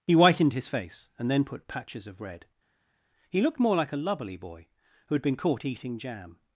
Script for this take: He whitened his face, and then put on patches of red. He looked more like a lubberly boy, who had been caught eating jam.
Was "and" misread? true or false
false